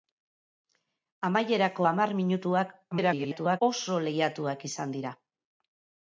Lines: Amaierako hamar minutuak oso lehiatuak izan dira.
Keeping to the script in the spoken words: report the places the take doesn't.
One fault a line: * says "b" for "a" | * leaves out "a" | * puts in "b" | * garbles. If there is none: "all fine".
* garbles